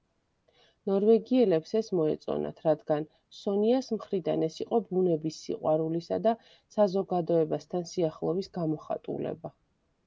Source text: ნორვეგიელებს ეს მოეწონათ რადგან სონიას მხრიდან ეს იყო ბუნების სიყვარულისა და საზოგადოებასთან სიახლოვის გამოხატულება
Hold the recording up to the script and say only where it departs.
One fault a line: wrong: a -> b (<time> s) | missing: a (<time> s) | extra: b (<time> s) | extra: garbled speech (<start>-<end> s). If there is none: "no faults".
no faults